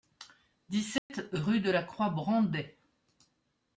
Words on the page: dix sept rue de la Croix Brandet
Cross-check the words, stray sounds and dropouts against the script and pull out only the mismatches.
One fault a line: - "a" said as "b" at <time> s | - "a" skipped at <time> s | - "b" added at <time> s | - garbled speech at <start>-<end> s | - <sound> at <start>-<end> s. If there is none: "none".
- dropout at 1.0-1.1 s